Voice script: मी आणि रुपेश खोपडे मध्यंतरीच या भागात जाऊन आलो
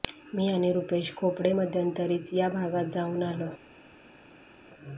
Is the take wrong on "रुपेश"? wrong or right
right